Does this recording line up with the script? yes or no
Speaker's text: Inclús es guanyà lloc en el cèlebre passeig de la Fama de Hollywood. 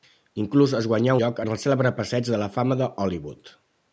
yes